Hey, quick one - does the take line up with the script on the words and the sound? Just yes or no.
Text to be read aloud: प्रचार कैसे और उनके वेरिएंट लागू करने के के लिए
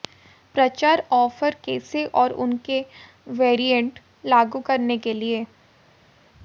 no